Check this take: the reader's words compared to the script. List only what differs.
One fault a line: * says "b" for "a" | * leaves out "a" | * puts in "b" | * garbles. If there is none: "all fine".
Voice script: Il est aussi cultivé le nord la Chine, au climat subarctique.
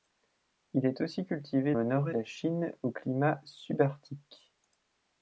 all fine